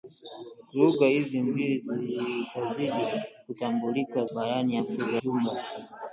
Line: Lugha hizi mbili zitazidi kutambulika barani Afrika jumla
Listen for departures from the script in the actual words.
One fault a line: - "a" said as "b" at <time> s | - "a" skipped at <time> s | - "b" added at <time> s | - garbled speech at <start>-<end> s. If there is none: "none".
none